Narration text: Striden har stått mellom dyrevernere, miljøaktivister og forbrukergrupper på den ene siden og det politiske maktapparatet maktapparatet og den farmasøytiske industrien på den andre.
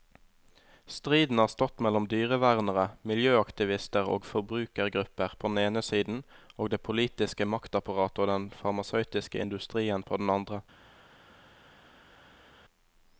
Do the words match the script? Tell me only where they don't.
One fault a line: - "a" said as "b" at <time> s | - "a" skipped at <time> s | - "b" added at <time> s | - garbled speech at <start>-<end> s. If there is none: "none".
- "maktapparatet" skipped at 8.2 s